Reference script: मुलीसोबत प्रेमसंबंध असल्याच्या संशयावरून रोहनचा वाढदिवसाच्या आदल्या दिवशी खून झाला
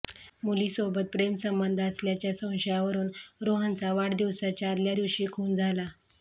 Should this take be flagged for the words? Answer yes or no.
no